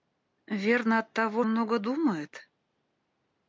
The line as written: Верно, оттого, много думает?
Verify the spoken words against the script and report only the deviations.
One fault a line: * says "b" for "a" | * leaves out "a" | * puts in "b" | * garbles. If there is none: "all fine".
all fine